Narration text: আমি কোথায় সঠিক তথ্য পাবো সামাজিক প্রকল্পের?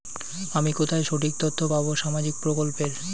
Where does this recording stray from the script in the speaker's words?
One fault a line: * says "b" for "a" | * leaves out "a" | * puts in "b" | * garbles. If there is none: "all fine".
all fine